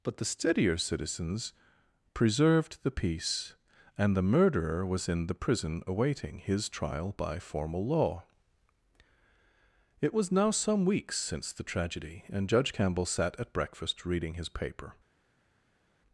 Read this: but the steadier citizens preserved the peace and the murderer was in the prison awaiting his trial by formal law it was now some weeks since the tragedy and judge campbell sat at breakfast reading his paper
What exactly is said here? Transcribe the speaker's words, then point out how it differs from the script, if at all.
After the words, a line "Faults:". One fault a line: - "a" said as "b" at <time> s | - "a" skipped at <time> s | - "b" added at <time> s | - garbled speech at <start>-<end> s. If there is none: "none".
but the steadier citizens preserved the peace and the murderer was in the prison awaiting his trial by formal law it was now some weeks since the tragedy and judge campbell sat at breakfast reading his paper
Faults:
none